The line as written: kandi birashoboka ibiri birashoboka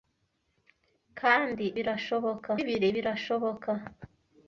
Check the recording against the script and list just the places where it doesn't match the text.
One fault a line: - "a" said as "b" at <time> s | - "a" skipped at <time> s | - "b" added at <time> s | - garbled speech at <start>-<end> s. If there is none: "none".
none